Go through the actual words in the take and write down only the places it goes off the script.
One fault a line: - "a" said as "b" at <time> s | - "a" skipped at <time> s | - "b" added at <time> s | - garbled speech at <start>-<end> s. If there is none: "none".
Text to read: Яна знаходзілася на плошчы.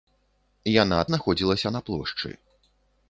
none